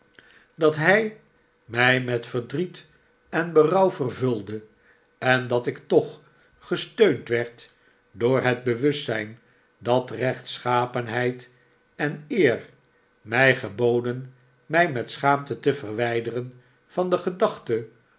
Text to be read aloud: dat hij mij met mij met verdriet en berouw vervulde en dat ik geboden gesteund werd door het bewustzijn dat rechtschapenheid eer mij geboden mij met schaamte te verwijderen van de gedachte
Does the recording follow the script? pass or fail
fail